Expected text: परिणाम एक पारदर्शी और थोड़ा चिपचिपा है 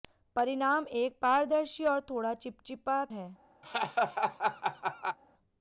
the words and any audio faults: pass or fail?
fail